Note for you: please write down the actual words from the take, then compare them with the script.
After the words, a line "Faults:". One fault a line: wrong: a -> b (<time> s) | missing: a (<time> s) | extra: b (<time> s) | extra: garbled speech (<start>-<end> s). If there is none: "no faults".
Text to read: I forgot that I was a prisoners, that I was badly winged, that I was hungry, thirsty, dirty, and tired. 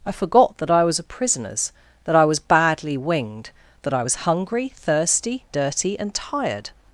I forgot that I was a prisoners, that I was badly winged, that I was hungry, thirsty, dirty, and tired.
Faults:
no faults